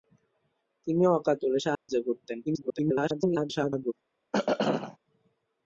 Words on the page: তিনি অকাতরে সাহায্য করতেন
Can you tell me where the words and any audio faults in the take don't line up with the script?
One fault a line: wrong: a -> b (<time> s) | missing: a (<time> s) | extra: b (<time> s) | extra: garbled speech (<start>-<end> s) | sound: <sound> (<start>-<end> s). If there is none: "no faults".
sound: dropout (1.7-1.9 s)
extra: garbled speech (2.5-3.9 s)
sound: throat clearing (4.3-5.0 s)